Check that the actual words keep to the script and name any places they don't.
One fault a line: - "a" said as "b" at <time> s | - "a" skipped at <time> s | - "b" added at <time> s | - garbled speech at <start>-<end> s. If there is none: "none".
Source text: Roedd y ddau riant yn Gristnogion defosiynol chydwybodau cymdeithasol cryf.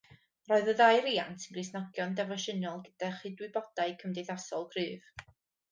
- "gyda" added at 2.9 s